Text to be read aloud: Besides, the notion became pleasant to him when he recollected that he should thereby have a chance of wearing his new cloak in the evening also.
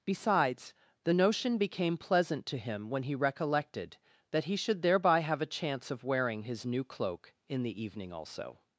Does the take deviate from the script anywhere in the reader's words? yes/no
no